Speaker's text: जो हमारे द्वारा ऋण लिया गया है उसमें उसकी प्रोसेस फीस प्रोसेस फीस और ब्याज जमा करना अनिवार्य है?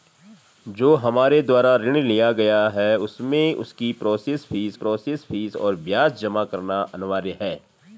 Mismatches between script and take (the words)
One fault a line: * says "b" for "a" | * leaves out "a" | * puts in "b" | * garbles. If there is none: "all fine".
all fine